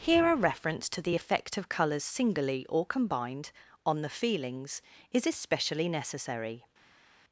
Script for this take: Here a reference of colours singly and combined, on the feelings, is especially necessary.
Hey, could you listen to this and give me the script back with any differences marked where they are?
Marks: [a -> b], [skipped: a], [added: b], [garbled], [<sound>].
Here a reference [added: to the effect] of colours singly [and -> or] combined, on the feelings, is especially necessary.